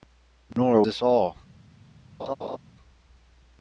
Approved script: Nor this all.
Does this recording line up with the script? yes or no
yes